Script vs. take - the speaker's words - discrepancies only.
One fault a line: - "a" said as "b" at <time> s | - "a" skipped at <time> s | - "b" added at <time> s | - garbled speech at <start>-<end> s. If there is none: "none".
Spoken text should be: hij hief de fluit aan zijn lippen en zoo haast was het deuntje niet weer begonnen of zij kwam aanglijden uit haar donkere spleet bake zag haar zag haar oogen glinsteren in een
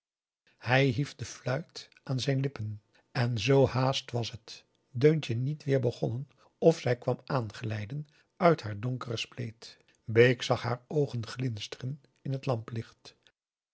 - "zag haar" skipped at 10.8 s
- "een" said as "het" at 12.3 s